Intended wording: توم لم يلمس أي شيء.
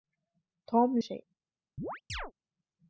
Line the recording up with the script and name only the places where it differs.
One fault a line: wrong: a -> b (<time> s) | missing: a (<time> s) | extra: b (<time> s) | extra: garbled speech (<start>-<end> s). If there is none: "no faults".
missing: لم يلمس أي (1.0 s)